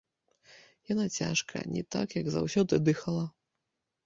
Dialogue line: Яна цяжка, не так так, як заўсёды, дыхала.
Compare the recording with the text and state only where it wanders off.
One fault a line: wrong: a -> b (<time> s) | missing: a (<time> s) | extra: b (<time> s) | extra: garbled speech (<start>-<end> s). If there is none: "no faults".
missing: так (2.2 s)